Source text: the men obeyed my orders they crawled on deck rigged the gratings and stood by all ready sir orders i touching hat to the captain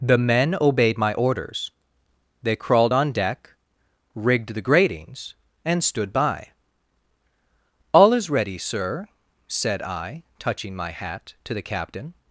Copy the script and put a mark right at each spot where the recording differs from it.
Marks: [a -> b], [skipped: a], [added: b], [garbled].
the men obeyed my orders they crawled on deck rigged the gratings and stood by all [added: is] ready sir [orders -> said] i touching [added: my] hat to the captain